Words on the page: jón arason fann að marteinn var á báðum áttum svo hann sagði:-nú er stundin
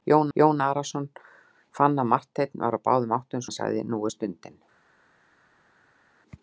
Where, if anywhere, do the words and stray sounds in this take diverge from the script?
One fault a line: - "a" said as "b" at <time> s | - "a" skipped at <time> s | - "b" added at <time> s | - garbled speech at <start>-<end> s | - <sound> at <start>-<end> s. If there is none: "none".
- "jón" added at 0.4 s
- "svo" skipped at 3.5 s